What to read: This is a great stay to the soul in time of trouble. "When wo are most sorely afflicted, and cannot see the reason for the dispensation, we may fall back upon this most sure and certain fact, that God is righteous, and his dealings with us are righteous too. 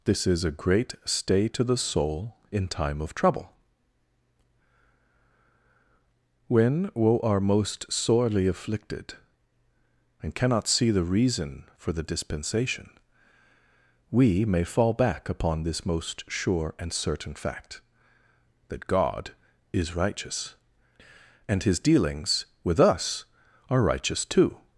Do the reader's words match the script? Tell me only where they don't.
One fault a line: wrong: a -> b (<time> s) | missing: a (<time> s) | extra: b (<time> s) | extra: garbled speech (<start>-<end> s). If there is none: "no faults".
no faults